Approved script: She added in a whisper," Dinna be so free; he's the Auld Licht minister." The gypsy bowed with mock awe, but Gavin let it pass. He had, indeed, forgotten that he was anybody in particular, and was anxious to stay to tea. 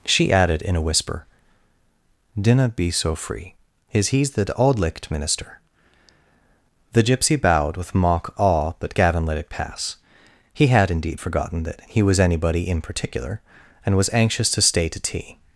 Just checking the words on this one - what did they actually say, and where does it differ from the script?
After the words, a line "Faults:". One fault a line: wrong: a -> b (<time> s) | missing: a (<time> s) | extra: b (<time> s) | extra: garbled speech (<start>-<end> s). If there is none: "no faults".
She added in a whisper," Dinna be so free; is he's the Auld Licht minister." The gypsy bowed with mock awe, but Gavin let it pass. He had, indeed, forgotten that he was anybody in particular, and was anxious to stay to tea.
Faults:
extra: is (3.9 s)